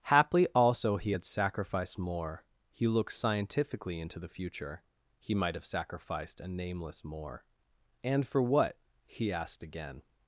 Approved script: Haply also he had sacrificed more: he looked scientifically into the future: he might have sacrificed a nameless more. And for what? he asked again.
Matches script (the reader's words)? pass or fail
pass